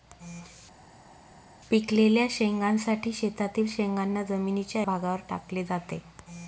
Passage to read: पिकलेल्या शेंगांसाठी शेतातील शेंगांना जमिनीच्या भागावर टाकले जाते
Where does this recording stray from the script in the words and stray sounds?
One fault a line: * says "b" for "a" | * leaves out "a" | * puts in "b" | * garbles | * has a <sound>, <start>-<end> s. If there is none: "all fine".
all fine